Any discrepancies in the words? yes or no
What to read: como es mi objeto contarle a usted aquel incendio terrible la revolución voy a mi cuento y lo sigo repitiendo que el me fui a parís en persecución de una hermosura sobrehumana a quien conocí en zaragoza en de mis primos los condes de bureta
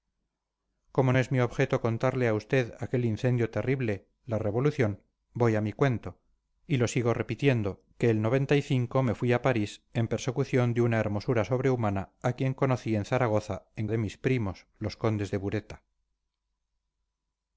no